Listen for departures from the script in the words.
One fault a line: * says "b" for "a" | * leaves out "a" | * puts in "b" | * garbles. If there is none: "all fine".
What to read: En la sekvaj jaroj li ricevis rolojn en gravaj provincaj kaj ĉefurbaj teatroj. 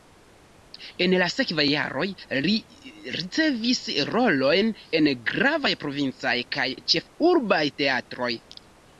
all fine